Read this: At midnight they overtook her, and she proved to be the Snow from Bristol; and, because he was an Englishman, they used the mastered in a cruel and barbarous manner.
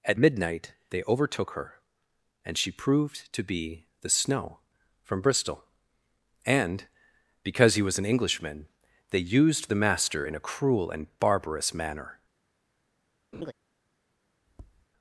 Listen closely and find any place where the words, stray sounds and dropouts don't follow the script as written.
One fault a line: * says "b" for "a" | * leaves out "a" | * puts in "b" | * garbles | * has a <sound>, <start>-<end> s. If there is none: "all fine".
* says "master" for "mastered"
* has a laugh, 13.3-13.5 s
* has a tap, 14.5-14.9 s